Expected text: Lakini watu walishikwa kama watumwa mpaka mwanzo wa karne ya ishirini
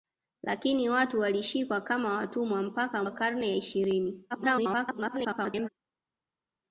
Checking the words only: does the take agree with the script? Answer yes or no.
no